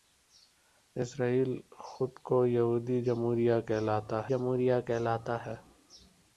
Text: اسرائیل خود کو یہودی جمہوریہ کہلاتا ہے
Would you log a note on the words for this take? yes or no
yes